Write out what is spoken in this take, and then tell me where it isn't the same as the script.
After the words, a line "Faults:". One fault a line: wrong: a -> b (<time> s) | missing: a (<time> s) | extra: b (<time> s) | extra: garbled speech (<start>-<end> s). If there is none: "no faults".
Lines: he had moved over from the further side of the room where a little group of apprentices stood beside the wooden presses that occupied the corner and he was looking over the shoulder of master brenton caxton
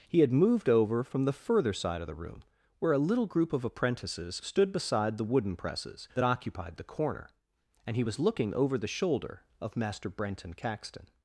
he had moved over from the further side of the room where a little group of apprentices stood beside the wooden presses that occupied the corner and he was looking over the shoulder of master brenton caxton
Faults:
no faults